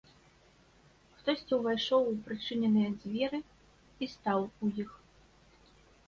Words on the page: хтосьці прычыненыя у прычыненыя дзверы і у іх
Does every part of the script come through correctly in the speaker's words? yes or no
no